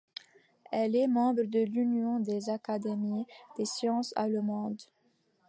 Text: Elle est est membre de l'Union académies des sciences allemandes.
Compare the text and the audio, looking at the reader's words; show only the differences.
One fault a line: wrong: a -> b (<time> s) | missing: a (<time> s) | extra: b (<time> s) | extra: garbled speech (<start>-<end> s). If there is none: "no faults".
missing: est (1.1 s)
extra: des (2.2 s)